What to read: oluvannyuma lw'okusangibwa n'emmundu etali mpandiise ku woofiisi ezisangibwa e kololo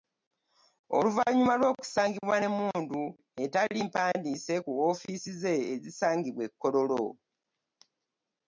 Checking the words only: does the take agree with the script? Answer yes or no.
no